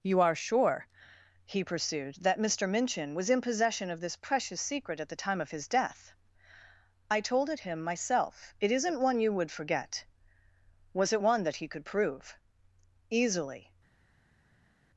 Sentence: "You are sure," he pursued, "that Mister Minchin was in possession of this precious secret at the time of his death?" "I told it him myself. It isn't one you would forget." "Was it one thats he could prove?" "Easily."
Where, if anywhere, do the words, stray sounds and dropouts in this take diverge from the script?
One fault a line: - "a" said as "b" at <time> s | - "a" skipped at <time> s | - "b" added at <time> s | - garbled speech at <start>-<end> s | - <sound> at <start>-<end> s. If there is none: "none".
- "thats" said as "that" at 11.4 s